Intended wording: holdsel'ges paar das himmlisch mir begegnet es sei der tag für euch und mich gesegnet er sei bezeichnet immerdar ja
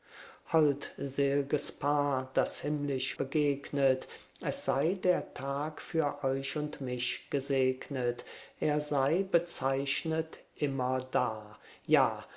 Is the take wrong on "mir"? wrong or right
wrong